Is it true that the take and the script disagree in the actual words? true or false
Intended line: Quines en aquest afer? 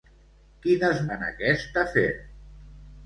false